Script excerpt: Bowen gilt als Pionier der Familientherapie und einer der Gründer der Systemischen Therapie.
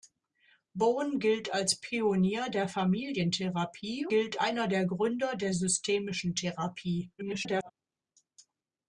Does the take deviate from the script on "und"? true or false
true